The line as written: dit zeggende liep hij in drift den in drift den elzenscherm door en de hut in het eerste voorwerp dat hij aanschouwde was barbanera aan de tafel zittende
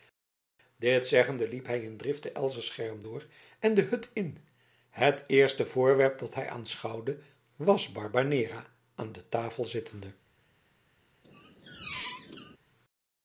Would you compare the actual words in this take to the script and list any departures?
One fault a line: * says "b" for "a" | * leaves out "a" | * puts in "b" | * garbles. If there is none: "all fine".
* leaves out "in drift den"